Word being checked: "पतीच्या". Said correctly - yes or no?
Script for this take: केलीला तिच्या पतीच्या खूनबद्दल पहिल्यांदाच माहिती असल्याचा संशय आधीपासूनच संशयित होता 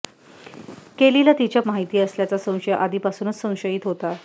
no